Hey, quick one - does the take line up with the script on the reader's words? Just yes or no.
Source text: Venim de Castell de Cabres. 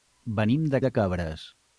no